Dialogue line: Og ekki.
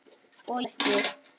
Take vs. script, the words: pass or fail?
pass